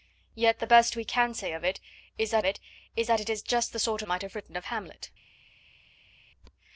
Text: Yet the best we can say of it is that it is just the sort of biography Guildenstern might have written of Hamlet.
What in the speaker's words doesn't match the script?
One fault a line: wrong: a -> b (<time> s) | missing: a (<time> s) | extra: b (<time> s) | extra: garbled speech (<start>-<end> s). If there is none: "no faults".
extra: that it is (3.1 s)
missing: of biography Guildenstern (4.0 s)